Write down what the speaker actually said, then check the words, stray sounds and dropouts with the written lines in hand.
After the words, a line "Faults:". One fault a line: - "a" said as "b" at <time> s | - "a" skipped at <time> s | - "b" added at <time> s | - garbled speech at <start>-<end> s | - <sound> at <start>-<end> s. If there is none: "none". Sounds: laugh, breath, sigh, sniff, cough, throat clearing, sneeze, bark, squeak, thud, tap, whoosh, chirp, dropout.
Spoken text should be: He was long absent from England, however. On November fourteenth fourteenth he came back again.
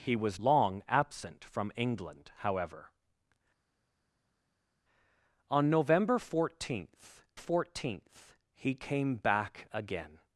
He was long absent from England, however. On November fourteenth fourteenth he came back again.
Faults:
none